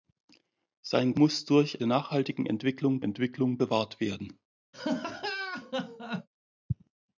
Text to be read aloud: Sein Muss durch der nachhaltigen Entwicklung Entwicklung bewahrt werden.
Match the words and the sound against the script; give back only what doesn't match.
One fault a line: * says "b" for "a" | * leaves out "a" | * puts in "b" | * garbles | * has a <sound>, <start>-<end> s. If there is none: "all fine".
* has a laugh, 4.7-6.3 s